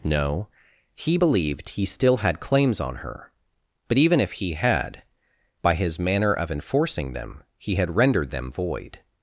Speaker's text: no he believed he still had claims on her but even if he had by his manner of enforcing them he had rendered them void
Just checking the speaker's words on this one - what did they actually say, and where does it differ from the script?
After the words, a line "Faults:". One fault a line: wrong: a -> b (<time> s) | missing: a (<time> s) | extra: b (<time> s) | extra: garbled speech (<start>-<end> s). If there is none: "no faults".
no he believed he still had claims on her but even if he had by his manner of enforcing them he had rendered them void
Faults:
no faults